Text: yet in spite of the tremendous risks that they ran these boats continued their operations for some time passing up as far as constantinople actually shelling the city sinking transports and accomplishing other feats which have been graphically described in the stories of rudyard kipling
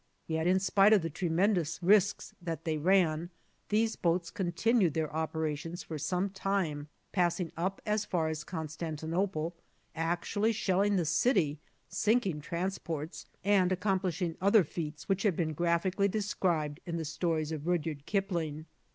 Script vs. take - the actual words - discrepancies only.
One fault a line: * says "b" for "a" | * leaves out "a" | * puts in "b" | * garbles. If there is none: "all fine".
all fine